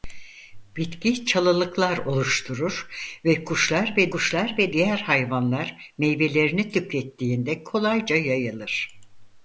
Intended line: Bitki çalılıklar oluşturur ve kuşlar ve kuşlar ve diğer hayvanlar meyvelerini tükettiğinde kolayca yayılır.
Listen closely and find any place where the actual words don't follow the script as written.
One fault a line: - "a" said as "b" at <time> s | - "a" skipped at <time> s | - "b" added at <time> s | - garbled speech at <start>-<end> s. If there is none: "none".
none